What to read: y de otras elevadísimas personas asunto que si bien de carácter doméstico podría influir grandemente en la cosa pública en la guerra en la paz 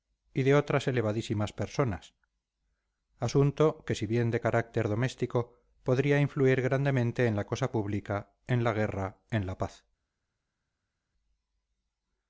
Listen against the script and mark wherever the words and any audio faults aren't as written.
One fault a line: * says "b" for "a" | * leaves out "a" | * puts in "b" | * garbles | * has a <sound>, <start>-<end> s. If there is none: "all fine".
all fine